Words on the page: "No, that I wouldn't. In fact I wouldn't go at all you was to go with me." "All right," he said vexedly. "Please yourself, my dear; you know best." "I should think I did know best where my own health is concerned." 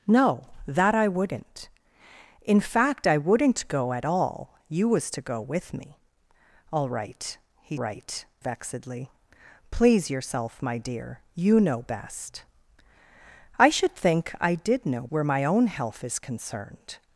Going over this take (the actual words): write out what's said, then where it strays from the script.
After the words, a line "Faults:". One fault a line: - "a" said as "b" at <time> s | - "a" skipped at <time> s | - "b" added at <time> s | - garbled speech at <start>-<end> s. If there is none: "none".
"No, that I wouldn't. In fact I wouldn't go at all you was to go with me." "All right," he right vexedly. "Please yourself, my dear; you know best." "I should think I did know where my own health is concerned."
Faults:
- "said" said as "right" at 7.8 s
- "best" skipped at 15.1 s